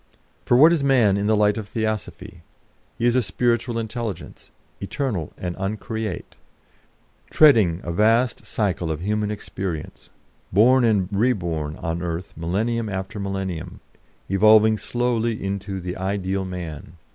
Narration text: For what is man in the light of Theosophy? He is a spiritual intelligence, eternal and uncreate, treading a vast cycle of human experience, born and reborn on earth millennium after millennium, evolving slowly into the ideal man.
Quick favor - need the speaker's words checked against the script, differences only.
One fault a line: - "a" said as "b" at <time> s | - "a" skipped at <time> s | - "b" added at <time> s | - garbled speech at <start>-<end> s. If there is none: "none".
none